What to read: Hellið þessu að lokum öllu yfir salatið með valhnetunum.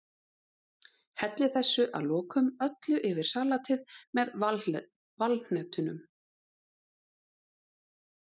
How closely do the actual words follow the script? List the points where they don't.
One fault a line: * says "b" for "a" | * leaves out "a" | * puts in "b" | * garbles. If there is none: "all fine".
all fine